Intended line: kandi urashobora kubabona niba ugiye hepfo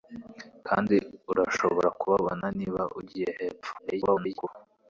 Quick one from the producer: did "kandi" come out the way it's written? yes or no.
yes